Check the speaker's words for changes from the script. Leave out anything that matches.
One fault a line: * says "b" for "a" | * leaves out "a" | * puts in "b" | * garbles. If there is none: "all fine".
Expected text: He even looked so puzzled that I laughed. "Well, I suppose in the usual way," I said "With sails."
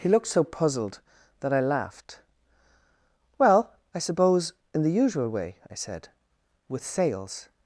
* leaves out "even"